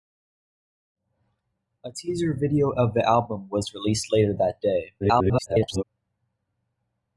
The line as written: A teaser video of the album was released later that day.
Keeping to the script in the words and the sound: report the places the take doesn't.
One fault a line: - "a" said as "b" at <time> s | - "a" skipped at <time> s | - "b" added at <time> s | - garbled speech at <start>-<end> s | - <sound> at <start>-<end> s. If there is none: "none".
- garbled speech at 5.0-5.8 s